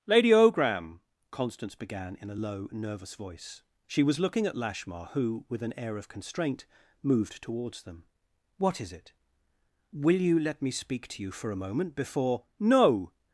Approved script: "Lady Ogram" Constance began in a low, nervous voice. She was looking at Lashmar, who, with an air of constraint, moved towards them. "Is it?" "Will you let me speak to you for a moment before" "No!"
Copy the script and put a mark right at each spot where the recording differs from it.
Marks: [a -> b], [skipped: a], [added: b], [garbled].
"Lady Ogram" Constance began in a low, nervous voice. She was looking at Lashmar, who, with an air of constraint, moved towards them. [added: What] "Is it?" "Will you let me speak to you for a moment before" "No!"